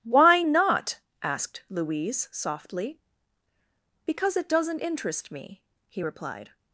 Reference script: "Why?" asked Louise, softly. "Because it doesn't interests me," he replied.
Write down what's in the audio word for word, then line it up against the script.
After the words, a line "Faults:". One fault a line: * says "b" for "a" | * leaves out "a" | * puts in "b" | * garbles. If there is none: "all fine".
"Why not?" asked Louise, softly. "Because it doesn't interest me," he replied.
Faults:
* puts in "not"
* says "interest" for "interests"